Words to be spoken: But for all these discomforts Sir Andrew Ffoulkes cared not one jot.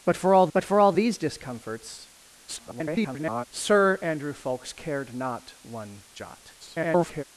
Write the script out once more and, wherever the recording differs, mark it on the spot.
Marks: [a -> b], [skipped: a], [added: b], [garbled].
But for all [added: but for all] these discomforts [garbled] Sir Andrew Ffoulkes cared not one jot. [garbled]